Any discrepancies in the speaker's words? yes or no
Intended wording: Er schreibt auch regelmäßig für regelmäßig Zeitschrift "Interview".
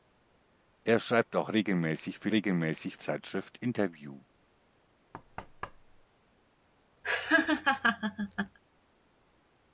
no